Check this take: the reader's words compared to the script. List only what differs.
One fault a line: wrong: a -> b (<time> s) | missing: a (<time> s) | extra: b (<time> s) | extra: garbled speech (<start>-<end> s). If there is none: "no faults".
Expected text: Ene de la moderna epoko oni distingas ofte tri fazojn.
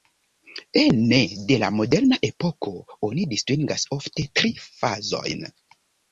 no faults